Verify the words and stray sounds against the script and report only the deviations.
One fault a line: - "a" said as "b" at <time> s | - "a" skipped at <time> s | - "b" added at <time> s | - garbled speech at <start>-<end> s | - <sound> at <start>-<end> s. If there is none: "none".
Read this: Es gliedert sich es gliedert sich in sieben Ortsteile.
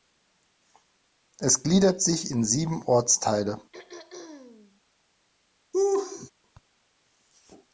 - "es gliedert sich" skipped at 2.3 s
- throat clearing at 3.7-4.8 s
- laugh at 5.7-6.3 s